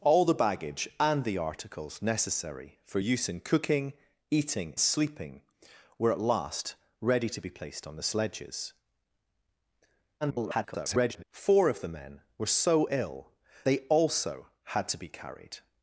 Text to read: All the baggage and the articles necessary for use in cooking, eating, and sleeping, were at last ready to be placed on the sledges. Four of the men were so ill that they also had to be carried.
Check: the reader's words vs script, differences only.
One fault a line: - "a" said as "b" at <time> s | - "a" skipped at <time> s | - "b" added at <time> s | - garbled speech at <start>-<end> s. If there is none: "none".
- "and" skipped at 4.8 s
- garbled speech at 10.2-11.2 s
- "that" skipped at 13.3 s